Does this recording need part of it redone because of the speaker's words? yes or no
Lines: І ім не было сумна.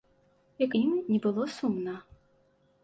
no